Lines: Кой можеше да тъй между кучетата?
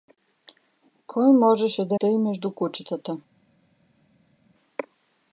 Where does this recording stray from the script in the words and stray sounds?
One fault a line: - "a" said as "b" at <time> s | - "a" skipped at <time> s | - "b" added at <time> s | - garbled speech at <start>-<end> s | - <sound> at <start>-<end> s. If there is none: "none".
none